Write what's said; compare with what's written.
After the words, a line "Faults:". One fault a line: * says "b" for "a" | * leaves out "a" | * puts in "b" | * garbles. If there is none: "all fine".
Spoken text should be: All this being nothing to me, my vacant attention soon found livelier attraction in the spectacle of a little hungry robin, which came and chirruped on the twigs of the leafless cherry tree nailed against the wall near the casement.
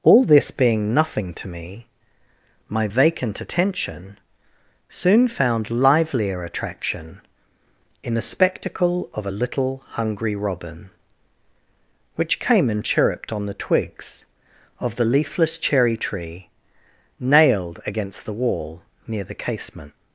All this being nothing to me, my vacant attention soon found livelier attraction in the spectacle of a little hungry robin, which came and chirruped on the twigs of the leafless cherry tree nailed against the wall near the casement.
Faults:
all fine